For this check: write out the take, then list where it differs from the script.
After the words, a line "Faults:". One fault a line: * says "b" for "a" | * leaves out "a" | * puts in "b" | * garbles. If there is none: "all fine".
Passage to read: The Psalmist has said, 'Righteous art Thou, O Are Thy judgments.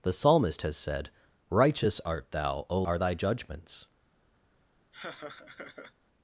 The Psalmist has said, 'Righteous art Thou, O Are Thy judgments.
Faults:
all fine